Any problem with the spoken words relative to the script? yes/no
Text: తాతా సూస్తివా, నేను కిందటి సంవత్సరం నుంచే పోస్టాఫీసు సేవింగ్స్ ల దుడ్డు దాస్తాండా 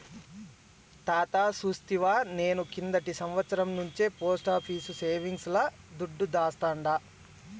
no